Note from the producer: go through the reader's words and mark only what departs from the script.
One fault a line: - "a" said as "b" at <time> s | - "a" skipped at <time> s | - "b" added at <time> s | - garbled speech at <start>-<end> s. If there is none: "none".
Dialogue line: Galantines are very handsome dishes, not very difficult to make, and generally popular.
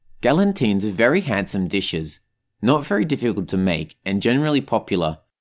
none